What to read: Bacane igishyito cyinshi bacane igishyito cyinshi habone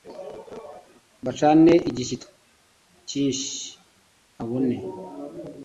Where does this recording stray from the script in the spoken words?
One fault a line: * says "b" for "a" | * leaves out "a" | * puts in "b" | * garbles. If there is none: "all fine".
* leaves out "bacane igishyito cyinshi"